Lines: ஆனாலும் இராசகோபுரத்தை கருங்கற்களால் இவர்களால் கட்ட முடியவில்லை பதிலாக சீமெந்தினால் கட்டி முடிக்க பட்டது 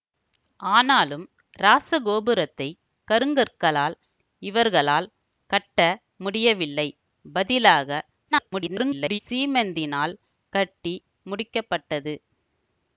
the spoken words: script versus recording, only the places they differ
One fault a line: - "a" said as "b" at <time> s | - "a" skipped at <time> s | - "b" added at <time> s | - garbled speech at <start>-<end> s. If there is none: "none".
- garbled speech at 8.3-9.2 s